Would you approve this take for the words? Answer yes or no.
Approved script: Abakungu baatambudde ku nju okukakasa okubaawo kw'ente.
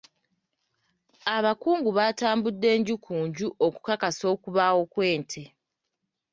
no